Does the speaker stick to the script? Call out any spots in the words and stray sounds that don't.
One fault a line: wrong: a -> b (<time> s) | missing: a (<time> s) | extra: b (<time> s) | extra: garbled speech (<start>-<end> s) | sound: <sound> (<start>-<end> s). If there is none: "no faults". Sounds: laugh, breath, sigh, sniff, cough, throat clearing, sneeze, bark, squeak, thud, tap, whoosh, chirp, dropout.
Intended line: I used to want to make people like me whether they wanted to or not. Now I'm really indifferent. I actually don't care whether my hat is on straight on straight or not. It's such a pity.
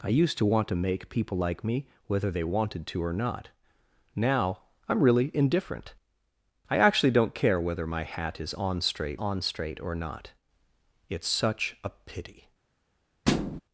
sound: thud (13.3-13.6 s)